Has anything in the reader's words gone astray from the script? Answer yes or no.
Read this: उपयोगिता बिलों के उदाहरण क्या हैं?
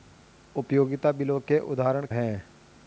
yes